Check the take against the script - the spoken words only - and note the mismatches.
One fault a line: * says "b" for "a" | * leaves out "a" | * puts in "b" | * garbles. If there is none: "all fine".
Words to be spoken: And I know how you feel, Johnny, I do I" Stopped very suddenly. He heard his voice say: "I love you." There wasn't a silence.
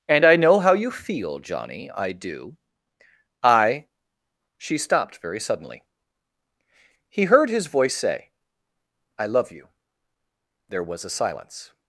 * puts in "She"
* says "was" for "wasn't"